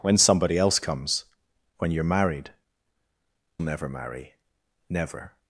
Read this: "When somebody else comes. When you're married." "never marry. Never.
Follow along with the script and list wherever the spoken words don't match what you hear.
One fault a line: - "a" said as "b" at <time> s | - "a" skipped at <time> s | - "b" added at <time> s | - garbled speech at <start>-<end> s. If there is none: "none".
none